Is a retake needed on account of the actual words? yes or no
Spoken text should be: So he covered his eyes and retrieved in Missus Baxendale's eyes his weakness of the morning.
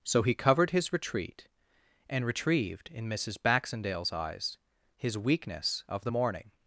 yes